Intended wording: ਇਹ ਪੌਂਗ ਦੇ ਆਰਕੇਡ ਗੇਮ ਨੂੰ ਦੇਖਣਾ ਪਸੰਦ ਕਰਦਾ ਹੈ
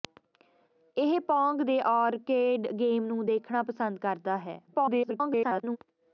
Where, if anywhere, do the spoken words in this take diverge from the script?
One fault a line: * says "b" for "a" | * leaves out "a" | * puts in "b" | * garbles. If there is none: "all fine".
* garbles